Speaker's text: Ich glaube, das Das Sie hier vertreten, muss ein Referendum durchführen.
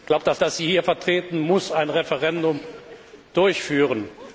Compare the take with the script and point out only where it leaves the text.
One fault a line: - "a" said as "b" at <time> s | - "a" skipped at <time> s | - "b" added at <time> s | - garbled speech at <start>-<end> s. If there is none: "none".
none